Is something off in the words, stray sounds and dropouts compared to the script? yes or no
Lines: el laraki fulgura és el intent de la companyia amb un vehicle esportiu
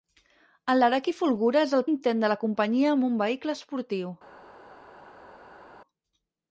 no